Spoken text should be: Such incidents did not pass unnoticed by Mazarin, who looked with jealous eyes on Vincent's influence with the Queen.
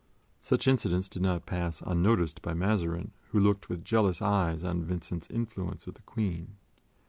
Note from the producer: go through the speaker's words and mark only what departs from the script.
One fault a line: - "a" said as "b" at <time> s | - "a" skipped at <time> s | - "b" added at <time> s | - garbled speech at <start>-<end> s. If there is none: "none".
none